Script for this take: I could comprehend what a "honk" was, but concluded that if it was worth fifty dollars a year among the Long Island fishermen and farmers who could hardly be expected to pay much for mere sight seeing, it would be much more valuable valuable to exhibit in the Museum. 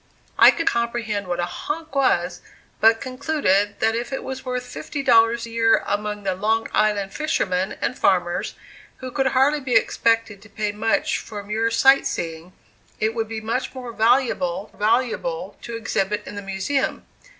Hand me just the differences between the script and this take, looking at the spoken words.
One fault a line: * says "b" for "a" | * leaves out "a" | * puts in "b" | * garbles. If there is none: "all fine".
all fine